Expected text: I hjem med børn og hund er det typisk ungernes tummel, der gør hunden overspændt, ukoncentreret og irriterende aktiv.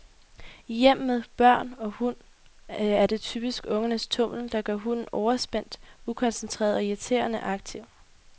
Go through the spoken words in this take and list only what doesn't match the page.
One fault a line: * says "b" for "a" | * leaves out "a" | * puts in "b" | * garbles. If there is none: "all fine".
all fine